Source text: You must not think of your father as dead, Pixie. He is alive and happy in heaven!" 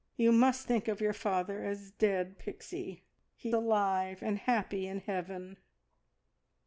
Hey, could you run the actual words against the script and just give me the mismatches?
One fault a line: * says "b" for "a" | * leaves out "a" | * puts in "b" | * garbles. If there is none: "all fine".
* leaves out "not"
* leaves out "is"